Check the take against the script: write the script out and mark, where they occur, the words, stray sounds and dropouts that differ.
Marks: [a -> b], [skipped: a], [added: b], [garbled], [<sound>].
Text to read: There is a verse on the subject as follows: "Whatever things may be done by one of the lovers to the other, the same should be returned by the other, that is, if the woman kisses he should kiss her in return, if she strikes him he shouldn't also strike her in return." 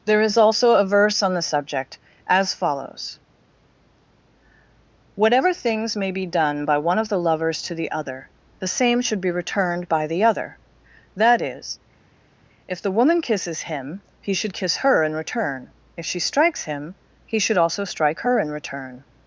There is [added: also] a verse on the subject as follows: "Whatever things may be done by one of the lovers to the other, the same should be returned by the other, that is, if the woman kisses [added: him] he should kiss her in return, if she strikes him he [shouldn't -> should] also strike her in return."